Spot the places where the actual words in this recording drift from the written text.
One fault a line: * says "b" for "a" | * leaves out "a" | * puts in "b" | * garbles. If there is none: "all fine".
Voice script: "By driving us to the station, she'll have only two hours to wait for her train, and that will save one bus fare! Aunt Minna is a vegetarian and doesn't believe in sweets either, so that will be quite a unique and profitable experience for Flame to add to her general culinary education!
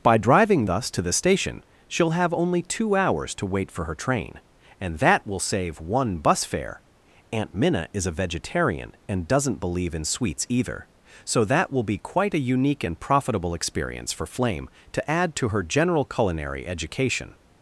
all fine